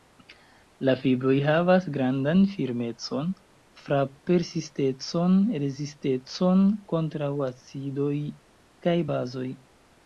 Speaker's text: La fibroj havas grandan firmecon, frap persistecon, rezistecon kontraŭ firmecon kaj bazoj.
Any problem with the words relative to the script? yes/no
yes